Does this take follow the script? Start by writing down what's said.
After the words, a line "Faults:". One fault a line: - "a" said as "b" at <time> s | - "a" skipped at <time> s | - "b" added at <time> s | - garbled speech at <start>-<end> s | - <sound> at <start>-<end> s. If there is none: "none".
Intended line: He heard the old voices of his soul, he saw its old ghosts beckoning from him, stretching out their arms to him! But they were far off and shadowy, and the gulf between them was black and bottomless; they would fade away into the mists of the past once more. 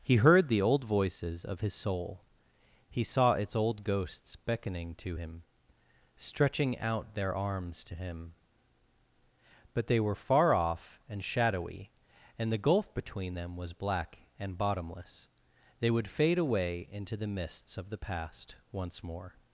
He heard the old voices of his soul, he saw its old ghosts beckoning to him, stretching out their arms to him! But they were far off and shadowy, and the gulf between them was black and bottomless; they would fade away into the mists of the past once more.
Faults:
- "from" said as "to" at 5.0 s